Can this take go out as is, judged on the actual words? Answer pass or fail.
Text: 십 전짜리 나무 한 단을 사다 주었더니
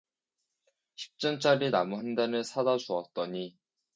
pass